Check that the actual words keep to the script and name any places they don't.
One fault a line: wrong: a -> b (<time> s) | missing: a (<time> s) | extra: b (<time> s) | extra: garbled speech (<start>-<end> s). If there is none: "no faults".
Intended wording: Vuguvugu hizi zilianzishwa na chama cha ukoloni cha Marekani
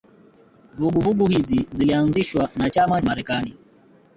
missing: cha ukoloni cha (3.0 s)